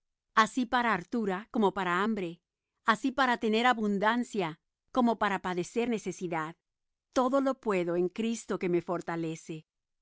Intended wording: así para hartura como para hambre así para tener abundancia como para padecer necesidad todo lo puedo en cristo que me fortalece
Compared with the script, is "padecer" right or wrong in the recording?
right